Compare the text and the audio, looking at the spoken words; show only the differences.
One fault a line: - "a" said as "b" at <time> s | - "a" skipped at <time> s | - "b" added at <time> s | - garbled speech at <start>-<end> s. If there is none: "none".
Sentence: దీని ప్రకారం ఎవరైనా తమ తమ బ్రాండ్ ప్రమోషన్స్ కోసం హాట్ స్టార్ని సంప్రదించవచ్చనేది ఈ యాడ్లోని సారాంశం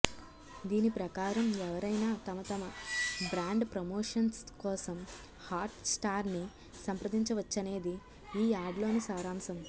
none